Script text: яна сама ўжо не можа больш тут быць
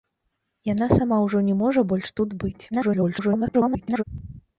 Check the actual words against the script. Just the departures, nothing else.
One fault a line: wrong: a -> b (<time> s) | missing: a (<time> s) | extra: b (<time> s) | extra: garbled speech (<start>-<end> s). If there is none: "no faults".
extra: garbled speech (2.7-4.0 s)